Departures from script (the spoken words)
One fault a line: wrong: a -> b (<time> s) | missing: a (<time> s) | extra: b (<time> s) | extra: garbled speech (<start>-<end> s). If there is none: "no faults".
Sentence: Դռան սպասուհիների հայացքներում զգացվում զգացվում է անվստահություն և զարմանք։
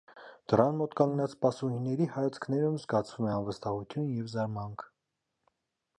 extra: մոտ կանգնած (0.8 s)
missing: զգացվում (3.3 s)